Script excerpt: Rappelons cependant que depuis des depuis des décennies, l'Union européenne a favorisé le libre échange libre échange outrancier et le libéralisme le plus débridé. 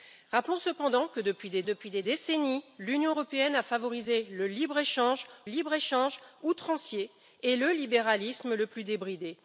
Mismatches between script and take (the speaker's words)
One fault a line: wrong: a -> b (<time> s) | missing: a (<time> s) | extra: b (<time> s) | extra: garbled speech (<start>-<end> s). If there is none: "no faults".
no faults